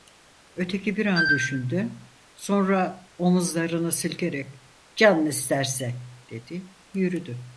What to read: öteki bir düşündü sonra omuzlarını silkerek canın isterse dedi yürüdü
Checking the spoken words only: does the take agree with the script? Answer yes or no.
no